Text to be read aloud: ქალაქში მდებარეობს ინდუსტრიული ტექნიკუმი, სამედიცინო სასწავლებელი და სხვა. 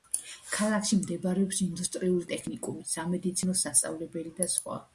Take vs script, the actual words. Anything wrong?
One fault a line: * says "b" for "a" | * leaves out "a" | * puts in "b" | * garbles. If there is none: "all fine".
all fine